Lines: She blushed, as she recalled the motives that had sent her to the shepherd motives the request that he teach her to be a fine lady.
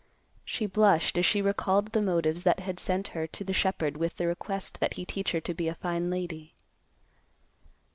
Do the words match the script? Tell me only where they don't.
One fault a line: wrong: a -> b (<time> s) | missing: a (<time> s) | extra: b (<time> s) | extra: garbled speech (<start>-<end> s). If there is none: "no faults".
wrong: motives -> with (4.0 s)